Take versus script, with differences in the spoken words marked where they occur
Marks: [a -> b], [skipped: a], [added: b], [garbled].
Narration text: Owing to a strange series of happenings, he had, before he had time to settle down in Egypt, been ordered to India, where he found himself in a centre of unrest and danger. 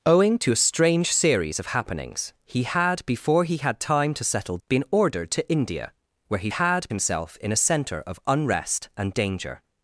Owing to a strange series of happenings, he had, before he had time to settle [skipped: down in Egypt,] been ordered to India, where he [found -> had] himself in a centre of unrest and danger.